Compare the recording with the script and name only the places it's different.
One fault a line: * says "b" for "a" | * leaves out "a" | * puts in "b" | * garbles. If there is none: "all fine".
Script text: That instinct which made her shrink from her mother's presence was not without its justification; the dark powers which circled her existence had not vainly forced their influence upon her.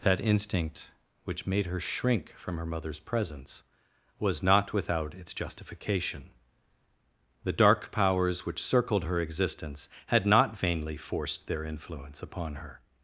all fine